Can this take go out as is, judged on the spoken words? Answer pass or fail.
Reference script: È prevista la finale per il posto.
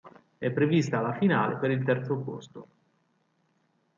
fail